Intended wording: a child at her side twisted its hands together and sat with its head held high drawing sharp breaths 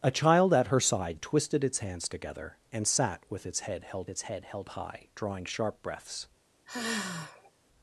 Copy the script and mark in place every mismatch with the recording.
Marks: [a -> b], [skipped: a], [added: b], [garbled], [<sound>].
a child at her side twisted its hands together and sat with its head held [added: its head held] high drawing sharp breaths [sigh]